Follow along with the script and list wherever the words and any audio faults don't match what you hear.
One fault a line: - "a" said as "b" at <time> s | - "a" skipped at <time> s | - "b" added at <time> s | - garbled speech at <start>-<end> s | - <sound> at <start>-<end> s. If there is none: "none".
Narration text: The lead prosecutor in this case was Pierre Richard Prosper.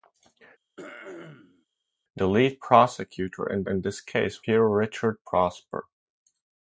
- throat clearing at 0.8-1.7 s
- "in" added at 3.7 s
- "was" skipped at 4.4 s